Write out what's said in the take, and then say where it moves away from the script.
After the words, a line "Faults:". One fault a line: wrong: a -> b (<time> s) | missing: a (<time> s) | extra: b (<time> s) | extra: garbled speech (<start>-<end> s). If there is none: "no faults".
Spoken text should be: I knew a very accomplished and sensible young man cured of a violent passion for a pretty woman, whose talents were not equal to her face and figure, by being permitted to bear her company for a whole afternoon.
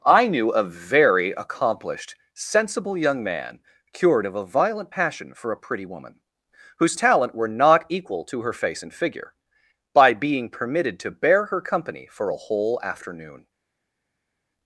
I knew a very accomplished sensible young man cured of a violent passion for a pretty woman, whose talent were not equal to her face and figure, by being permitted to bear her company for a whole afternoon.
Faults:
missing: and (2.1 s)
wrong: talents -> talent (6.9 s)